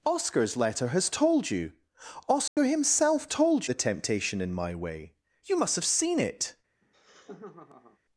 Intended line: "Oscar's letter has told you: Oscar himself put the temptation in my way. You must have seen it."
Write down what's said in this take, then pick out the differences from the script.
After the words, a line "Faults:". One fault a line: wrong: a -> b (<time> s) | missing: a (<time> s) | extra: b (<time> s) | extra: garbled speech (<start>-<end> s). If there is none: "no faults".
"Oscar's letter has told you: Oscar himself told the temptation in my way. You must have seen it."
Faults:
wrong: put -> told (3.2 s)